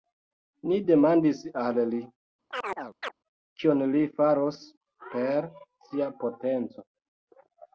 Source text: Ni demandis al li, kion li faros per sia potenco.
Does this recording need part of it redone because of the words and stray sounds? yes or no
yes